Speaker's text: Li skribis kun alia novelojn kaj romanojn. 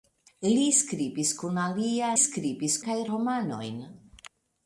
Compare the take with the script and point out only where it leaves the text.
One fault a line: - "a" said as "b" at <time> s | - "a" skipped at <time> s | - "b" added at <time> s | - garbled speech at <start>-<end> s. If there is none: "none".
- "novelojn" said as "skribis" at 2.2 s